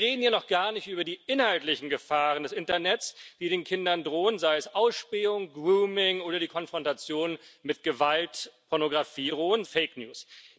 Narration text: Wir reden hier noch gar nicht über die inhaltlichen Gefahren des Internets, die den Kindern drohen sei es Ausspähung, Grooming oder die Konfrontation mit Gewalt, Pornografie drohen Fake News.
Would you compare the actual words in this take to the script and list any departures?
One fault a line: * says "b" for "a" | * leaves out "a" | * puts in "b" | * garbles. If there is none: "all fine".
all fine